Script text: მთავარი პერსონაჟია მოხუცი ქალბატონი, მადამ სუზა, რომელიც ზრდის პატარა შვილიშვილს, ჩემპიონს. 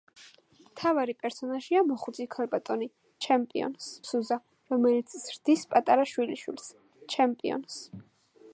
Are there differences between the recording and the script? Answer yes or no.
yes